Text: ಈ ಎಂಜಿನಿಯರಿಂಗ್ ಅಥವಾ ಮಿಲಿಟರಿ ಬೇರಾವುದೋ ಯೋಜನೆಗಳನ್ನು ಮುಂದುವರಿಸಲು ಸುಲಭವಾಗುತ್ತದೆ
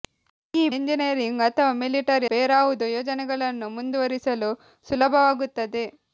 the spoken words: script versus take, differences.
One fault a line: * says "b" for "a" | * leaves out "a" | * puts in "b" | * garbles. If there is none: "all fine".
all fine